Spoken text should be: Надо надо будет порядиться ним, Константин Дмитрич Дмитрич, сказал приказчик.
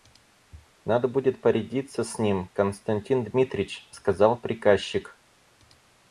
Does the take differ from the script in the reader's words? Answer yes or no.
yes